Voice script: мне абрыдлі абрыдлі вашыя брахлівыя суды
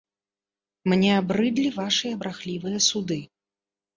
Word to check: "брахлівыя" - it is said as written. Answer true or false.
true